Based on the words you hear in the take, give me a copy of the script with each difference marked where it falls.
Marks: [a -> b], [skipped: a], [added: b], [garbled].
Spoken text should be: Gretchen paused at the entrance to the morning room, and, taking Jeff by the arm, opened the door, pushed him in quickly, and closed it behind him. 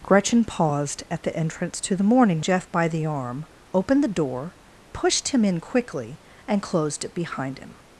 Gretchen paused at the entrance to the morning [skipped: room, and, taking] Jeff by the arm, opened the door, pushed him in quickly, and closed it behind him.